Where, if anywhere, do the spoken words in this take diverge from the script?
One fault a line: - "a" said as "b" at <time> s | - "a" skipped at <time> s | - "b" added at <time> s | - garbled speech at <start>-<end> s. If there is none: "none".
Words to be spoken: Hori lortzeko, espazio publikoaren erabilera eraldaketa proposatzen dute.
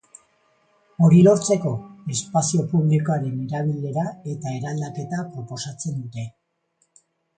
- "eta" added at 4.4 s